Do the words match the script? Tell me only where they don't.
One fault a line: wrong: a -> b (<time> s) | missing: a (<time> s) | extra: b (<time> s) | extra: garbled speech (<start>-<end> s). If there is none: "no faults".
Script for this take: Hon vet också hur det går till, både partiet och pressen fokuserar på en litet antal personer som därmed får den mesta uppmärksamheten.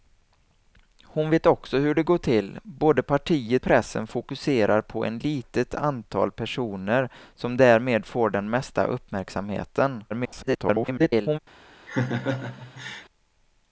missing: och (3.6 s)
extra: garbled speech (10.1-11.4 s)